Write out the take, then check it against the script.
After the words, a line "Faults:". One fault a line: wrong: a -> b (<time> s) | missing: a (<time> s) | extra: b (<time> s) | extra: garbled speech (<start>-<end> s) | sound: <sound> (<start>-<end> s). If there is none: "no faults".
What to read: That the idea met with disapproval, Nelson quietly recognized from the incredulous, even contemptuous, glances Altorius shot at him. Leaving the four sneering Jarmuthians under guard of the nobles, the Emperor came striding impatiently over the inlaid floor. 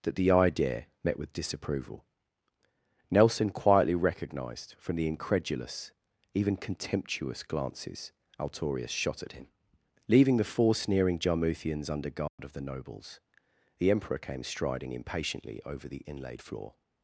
That the idea met with disapproval, Nelson quietly recognized from the incredulous, even contemptuous, glances Altorius shot at him. Leaving the four sneering Jarmuthians under guard of the nobles, the Emperor came striding impatiently over the inlaid floor.
Faults:
sound: dropout (12.3-12.4 s)